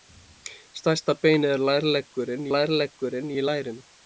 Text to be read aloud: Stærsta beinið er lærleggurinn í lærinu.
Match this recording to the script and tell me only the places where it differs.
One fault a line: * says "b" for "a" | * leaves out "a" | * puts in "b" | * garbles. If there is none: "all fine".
* puts in "lærleggurinn"